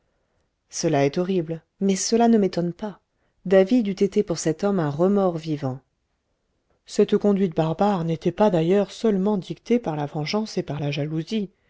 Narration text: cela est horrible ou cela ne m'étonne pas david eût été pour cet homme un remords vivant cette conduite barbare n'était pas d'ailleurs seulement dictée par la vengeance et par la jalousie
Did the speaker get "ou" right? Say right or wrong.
wrong